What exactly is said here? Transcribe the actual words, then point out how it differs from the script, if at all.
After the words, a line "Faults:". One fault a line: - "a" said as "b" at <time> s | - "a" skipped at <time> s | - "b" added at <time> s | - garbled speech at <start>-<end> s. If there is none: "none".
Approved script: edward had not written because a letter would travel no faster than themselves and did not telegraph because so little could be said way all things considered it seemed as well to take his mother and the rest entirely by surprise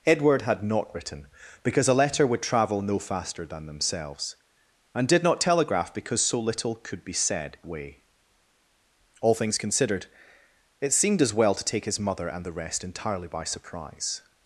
edward had not written because a letter would travel no faster than themselves and did not telegraph because so little could be said way all things considered it seemed as well to take his mother and the rest entirely by surprise
Faults:
none